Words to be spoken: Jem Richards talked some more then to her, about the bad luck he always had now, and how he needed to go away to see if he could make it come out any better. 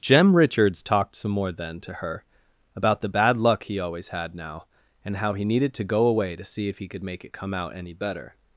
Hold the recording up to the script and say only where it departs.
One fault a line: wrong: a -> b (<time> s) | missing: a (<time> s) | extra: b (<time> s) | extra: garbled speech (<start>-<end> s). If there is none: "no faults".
no faults